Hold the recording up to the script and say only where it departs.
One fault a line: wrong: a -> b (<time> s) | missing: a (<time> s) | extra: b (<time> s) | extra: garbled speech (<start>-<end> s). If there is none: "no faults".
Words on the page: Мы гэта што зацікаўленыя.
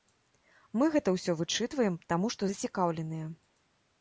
extra: ўсё вычытваем таму (1.2 s)